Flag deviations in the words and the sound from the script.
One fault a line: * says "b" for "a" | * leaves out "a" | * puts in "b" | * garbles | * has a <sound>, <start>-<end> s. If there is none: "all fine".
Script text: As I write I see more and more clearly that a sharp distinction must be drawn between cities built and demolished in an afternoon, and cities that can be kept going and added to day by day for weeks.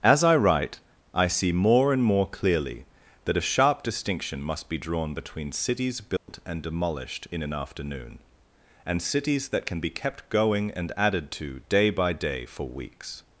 * has a dropout, 6.2-6.3 s